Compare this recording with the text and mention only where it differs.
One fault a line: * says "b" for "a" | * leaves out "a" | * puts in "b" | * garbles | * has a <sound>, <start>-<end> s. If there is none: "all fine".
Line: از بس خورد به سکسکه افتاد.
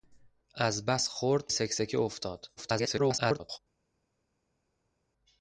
* leaves out "به"
* garbles